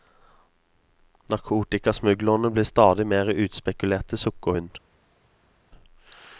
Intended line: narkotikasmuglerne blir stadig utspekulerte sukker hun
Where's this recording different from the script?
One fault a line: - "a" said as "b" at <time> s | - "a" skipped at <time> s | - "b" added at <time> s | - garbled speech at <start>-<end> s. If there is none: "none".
- "mer" added at 3.1 s